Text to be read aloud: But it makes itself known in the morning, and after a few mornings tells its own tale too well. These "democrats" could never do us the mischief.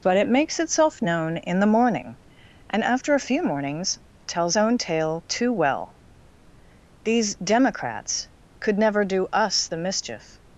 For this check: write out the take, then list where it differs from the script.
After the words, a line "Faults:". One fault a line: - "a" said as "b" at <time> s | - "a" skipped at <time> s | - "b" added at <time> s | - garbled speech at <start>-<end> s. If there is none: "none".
But it makes itself known in the morning, and after a few mornings tells own tale too well. These "democrats" could never do us the mischief.
Faults:
- "its" skipped at 4.6 s